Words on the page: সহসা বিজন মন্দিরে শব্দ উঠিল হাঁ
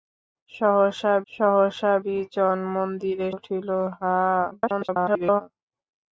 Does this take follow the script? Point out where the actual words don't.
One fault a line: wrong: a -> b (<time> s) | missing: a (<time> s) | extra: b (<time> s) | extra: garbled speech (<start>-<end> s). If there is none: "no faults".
extra: সহসা (1.3 s)
missing: শব্দ (3.3 s)
extra: garbled speech (4.5-5.4 s)